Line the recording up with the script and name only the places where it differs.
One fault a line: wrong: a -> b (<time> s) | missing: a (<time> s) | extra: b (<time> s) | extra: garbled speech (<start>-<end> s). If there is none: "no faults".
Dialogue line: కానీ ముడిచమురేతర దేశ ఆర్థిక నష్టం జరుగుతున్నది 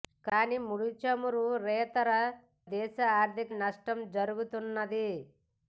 no faults